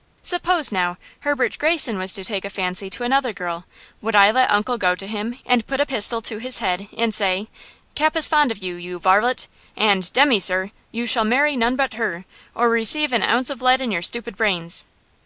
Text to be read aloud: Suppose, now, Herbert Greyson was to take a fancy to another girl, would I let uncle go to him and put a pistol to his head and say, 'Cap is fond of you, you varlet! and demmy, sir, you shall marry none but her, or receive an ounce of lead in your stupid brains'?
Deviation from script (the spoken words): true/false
false